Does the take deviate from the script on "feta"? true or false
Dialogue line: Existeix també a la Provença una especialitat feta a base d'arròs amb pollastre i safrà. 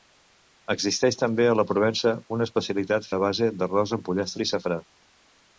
true